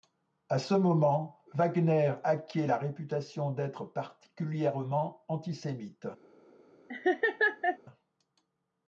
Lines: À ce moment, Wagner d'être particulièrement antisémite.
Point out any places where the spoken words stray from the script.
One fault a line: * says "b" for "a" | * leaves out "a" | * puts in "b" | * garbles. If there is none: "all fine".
* puts in "acquiert la réputation"